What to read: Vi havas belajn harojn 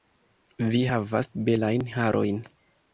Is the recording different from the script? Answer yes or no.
no